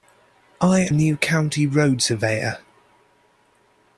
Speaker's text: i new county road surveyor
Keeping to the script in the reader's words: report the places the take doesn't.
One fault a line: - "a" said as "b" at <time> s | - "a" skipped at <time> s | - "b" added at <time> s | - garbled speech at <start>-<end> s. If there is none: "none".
none